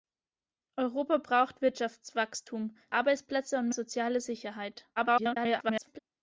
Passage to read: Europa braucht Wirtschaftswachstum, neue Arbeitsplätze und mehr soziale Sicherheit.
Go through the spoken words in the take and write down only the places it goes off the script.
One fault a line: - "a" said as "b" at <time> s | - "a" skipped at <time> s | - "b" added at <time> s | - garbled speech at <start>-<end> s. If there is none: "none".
- "neue" skipped at 2.8 s
- "mehr" skipped at 3.7 s
- garbled speech at 5.0-6.0 s